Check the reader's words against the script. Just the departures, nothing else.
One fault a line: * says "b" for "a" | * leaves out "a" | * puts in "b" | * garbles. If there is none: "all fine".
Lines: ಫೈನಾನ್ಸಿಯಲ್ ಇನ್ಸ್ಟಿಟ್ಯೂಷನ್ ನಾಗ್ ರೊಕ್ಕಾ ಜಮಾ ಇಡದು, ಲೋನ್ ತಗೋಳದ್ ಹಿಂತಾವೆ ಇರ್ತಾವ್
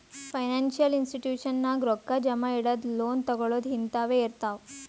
all fine